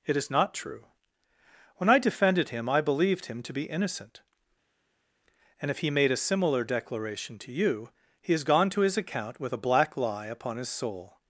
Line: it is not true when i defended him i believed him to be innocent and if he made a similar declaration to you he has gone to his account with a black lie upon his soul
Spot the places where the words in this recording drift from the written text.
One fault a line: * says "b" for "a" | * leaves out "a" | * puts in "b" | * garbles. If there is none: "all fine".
all fine